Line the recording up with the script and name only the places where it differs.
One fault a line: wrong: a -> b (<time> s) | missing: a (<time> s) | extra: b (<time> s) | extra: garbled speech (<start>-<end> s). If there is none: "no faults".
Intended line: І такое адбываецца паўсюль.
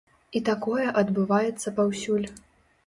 no faults